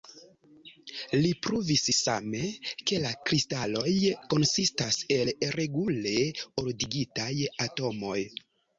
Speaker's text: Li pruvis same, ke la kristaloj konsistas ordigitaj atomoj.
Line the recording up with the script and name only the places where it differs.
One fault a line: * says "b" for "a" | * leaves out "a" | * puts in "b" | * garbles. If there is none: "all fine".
* puts in "el regule"